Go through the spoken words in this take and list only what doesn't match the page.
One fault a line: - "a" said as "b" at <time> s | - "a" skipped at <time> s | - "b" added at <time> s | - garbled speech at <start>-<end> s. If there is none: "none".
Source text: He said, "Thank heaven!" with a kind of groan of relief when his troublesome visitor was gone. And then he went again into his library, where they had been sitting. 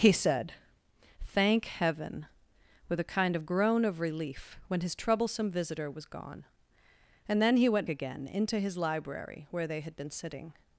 none